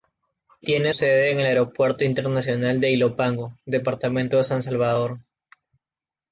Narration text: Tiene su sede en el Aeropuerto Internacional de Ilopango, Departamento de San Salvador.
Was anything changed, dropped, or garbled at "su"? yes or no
yes